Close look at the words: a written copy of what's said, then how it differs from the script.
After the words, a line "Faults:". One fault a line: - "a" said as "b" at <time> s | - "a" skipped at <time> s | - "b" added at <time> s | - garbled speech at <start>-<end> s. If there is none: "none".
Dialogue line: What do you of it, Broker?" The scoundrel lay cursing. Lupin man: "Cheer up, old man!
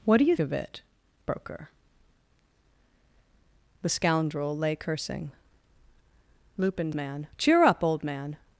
What do you of it, Broker?" The scoundrel lay cursing. Lupin man: "Cheer up, old man!
Faults:
none